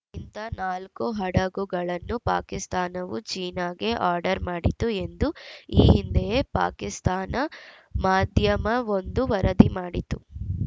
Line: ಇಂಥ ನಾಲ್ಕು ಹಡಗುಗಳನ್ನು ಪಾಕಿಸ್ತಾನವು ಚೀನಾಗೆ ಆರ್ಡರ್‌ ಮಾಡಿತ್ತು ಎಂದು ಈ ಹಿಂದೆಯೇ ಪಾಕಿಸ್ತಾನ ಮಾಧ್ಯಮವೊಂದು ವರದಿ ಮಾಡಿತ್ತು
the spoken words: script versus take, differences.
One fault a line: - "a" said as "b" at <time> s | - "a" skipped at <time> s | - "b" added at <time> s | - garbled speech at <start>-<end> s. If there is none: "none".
none